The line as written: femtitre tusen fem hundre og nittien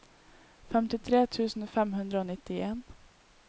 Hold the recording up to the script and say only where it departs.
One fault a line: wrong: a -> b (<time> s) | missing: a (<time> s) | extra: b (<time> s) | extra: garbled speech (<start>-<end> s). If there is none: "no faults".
no faults